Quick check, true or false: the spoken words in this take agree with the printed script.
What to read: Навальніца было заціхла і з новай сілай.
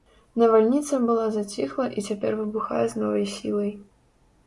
false